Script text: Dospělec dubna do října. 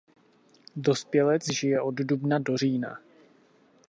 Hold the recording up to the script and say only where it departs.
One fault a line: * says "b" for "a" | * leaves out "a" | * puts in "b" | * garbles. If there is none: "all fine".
* puts in "žije od"